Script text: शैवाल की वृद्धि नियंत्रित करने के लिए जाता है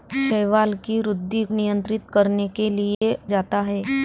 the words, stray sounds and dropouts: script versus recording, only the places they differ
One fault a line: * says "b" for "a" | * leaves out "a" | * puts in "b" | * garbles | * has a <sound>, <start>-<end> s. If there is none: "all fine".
* has a dropout, 2.9-3.0 s